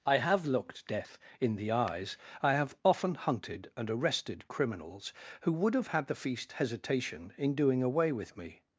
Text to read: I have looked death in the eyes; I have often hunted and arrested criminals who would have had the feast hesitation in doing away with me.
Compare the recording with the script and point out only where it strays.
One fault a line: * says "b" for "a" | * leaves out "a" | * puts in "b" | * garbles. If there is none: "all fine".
all fine